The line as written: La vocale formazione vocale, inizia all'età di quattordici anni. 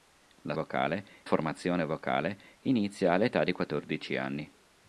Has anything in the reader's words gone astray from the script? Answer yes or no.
no